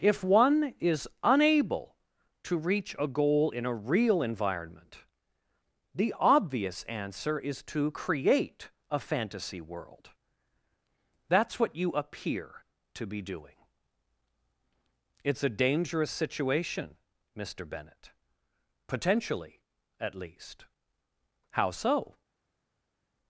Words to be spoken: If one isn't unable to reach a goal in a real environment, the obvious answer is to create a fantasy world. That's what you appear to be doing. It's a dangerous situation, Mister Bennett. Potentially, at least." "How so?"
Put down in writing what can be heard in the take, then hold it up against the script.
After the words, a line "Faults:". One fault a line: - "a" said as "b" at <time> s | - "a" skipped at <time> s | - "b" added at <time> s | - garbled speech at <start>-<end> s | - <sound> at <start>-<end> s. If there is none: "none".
If one is unable to reach a goal in a real environment, the obvious answer is to create a fantasy world. That's what you appear to be doing. It's a dangerous situation, Mister Bennett. Potentially, at least." "How so?"
Faults:
- "isn't" said as "is" at 0.8 s